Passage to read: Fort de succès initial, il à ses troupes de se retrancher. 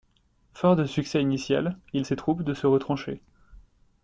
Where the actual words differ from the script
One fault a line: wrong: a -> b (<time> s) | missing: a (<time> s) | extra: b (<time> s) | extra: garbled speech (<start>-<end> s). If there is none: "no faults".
no faults